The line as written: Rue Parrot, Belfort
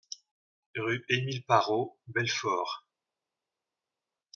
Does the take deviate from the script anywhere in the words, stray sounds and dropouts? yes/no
yes